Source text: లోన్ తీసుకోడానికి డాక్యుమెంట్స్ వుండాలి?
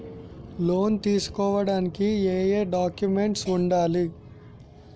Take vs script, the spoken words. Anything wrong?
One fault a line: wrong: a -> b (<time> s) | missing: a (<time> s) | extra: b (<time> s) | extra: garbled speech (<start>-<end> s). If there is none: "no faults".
extra: ఏయే (2.3 s)